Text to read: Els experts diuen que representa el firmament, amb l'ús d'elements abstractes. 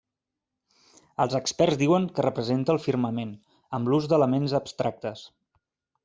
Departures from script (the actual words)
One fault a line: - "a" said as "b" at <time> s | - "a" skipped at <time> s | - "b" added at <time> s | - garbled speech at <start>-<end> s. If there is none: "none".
none